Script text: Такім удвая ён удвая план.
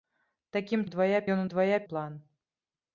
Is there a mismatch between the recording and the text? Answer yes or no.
no